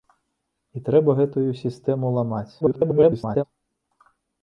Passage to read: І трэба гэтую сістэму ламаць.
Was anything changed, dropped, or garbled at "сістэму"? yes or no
no